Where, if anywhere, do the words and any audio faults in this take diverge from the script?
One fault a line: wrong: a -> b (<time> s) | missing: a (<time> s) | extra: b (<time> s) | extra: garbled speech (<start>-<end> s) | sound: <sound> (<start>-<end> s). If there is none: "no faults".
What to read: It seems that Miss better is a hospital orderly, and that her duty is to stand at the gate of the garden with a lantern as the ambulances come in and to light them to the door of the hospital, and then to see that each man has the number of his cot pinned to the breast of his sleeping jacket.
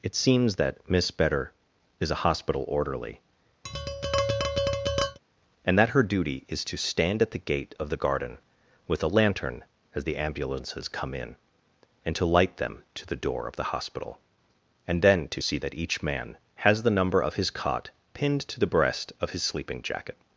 sound: tap (3.6-5.2 s)